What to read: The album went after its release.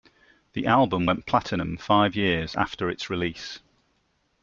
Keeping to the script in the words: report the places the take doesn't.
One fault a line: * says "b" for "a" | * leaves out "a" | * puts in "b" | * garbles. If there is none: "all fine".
* puts in "platinum five years"